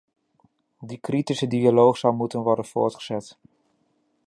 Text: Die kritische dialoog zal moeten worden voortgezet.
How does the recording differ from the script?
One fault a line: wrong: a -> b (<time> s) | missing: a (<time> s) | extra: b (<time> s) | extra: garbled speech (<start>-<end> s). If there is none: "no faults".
no faults